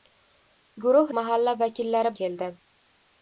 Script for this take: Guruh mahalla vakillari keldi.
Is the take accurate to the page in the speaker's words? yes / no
yes